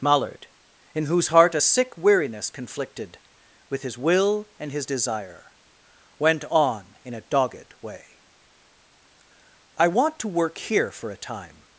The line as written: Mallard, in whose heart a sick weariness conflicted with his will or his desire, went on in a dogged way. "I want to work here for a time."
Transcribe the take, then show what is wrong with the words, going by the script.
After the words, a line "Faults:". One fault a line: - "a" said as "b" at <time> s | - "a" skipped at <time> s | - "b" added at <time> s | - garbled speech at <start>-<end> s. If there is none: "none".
Mallard, in whose heart a sick weariness conflicted with his will and his desire, went on in a dogged way. "I want to work here for a time."
Faults:
- "or" said as "and" at 4.6 s